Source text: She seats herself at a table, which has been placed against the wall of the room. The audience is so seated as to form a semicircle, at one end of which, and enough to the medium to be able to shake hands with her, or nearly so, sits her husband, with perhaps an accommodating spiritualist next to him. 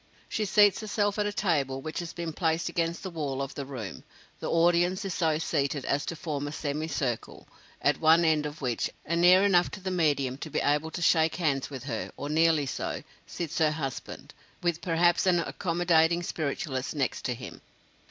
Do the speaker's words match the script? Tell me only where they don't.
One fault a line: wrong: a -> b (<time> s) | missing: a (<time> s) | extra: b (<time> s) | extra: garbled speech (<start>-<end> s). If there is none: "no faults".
extra: near (9.2 s)